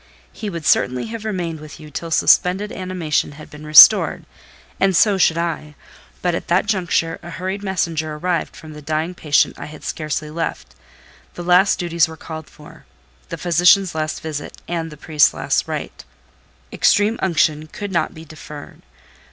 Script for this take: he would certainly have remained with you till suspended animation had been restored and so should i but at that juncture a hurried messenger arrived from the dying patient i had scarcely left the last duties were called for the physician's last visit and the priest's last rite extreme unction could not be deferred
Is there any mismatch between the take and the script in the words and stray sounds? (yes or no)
no